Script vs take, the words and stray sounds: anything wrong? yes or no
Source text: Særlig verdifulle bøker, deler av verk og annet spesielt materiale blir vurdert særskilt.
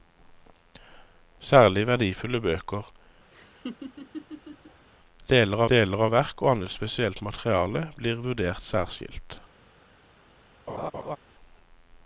yes